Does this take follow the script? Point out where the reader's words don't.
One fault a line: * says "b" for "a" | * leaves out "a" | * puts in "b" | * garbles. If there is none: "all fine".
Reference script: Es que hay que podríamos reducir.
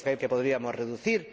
all fine